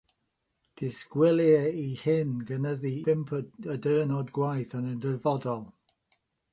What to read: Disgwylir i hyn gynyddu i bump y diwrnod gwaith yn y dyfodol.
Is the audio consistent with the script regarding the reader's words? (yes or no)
no